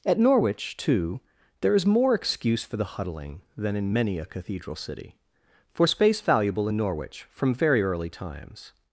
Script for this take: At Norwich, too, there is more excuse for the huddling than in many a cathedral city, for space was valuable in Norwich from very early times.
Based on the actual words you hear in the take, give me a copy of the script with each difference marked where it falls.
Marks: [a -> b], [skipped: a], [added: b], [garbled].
At Norwich, too, there is more excuse for the huddling than in many a cathedral city, for space [skipped: was] valuable in Norwich from very early times.